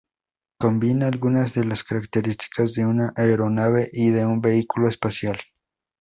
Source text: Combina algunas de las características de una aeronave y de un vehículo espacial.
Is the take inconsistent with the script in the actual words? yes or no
no